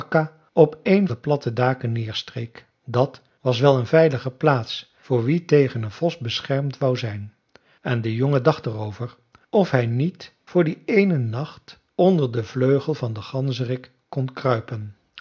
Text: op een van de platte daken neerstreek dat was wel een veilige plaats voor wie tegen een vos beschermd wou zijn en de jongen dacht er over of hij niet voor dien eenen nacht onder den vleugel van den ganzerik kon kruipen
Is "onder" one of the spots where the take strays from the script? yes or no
no